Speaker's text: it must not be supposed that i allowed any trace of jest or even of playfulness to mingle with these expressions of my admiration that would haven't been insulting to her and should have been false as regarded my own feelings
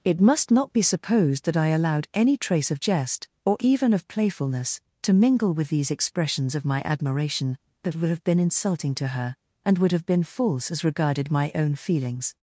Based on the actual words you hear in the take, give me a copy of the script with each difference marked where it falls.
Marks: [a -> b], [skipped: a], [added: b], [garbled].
it must not be supposed that i allowed any trace of jest or even of playfulness to mingle with these expressions of my admiration that would [haven't -> have] been insulting to her and [should -> would] have been false as regarded my own feelings